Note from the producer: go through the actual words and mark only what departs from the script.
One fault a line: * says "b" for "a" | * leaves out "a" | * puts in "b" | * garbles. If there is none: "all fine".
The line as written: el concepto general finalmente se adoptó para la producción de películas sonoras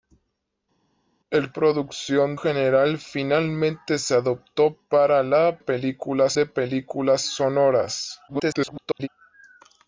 * says "producción" for "concepto"
* says "películas" for "producción"
* garbles